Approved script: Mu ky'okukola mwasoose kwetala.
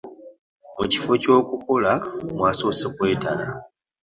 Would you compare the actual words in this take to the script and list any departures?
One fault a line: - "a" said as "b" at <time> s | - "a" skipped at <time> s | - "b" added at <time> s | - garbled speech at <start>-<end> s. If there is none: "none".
- "kifo" added at 0.9 s